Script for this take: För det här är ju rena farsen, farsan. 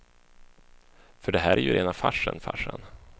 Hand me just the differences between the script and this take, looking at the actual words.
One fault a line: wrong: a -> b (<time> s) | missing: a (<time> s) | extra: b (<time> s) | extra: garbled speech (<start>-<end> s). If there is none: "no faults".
no faults